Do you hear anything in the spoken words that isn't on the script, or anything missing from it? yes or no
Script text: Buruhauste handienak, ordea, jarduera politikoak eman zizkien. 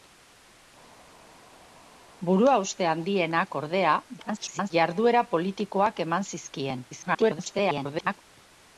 yes